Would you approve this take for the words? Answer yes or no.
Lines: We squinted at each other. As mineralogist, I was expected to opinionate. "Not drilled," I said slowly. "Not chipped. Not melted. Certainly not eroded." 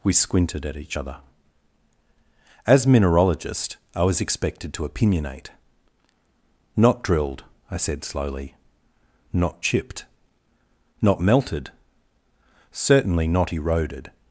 yes